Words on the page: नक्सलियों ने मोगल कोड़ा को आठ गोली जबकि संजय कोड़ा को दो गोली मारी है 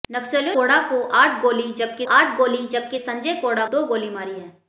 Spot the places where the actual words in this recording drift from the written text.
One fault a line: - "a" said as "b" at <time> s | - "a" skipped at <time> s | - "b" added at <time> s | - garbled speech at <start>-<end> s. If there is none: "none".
- "ने मोगल" skipped at 0.6 s
- "आठ गोली जबकि" added at 2.1 s
- "को" skipped at 3.7 s